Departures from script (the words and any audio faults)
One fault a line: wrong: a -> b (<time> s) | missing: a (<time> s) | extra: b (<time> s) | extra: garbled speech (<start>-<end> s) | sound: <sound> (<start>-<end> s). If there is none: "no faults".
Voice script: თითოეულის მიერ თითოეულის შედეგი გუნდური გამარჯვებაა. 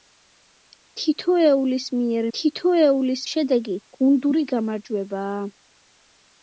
no faults